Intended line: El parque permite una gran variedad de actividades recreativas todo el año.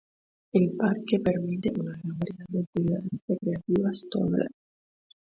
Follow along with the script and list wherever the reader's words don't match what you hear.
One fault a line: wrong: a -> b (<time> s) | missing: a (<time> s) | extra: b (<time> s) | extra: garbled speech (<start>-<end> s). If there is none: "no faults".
no faults